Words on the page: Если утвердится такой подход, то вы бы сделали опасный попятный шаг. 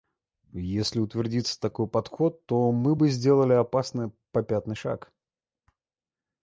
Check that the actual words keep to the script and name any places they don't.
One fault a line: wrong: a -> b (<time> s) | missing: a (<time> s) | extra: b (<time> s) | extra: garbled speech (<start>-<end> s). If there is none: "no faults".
wrong: вы -> мы (2.7 s)